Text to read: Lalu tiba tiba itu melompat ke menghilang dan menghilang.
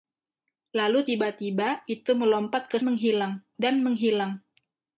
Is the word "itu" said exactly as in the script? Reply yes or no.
yes